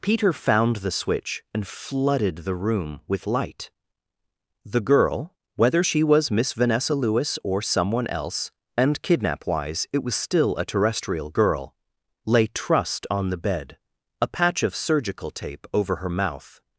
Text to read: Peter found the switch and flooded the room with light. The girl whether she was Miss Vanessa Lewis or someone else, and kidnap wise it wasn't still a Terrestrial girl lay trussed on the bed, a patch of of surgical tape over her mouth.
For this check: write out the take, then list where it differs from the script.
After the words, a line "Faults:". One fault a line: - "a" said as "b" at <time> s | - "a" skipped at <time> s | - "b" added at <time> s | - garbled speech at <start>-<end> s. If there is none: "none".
Peter found the switch and flooded the room with light. The girl whether she was Miss Vanessa Lewis or someone else, and kidnap wise it was still a Terrestrial girl lay trussed on the bed, a patch of surgical tape over her mouth.
Faults:
- "wasn't" said as "was" at 10.0 s
- "of" skipped at 14.8 s